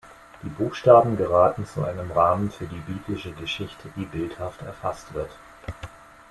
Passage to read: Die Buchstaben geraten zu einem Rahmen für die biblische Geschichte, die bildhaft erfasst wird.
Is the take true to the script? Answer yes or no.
yes